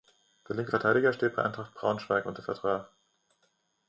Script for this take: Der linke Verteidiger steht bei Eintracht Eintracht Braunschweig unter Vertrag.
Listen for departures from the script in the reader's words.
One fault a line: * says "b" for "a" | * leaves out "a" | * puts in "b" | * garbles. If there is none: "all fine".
* leaves out "Eintracht"